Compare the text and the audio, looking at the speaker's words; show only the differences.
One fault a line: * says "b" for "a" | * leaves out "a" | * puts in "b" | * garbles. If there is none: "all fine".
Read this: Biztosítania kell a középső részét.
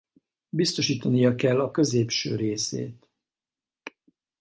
all fine